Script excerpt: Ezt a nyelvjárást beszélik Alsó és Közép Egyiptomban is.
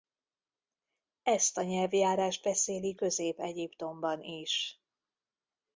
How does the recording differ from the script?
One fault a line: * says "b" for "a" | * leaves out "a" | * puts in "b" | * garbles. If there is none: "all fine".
* leaves out "Alsó és"